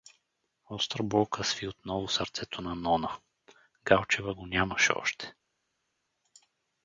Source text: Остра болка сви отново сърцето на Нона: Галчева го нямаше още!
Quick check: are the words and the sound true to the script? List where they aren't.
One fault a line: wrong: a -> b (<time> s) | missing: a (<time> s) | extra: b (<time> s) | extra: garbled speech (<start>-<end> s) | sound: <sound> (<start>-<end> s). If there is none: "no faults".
no faults